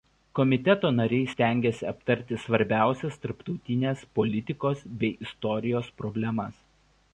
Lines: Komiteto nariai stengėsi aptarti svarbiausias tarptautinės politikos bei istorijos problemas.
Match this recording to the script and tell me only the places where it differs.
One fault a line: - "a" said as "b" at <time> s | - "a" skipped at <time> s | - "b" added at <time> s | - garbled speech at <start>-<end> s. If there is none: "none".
none